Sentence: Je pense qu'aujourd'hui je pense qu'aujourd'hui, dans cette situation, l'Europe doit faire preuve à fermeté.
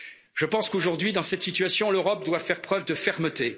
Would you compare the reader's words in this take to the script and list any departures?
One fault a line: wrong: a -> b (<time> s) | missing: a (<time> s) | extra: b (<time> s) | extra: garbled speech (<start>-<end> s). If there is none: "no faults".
missing: je pense qu'aujourd'hui (1.1 s)
wrong: à -> de (2.9 s)